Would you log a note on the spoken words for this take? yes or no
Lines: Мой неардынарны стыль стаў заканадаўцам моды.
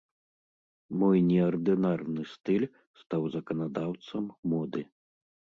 no